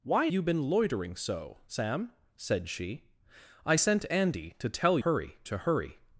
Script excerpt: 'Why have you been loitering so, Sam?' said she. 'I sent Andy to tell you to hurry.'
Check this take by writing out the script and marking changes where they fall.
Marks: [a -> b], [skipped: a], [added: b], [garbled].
'Why [skipped: have] you been loitering so, Sam?' said she. 'I sent Andy to tell [you -> hurry] to hurry.'